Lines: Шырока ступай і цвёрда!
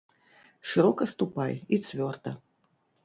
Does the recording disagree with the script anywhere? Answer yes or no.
no